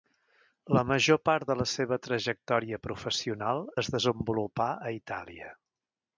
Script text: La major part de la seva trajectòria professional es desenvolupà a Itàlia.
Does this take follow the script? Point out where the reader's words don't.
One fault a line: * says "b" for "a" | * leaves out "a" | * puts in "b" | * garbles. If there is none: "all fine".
all fine